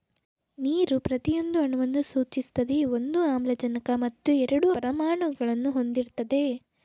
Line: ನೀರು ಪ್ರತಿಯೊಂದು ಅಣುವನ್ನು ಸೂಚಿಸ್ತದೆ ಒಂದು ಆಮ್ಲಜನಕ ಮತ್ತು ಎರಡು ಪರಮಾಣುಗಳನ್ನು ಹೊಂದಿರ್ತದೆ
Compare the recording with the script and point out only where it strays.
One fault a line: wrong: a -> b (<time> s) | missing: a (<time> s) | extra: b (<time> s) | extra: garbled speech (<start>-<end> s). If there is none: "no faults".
no faults